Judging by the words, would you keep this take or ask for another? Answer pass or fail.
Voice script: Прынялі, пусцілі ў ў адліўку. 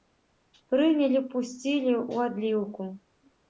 fail